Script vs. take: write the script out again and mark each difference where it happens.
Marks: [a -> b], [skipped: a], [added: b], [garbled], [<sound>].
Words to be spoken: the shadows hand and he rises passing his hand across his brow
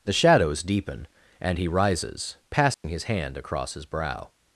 the shadows [hand -> deepen] and he rises passing [dropout] his hand across his brow